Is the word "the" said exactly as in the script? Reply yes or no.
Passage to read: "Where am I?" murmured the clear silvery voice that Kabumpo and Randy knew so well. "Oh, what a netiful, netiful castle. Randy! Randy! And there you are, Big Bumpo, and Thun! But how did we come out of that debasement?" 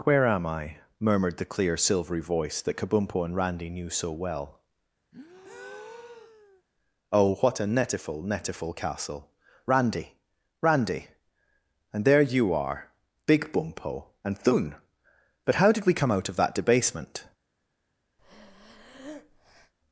yes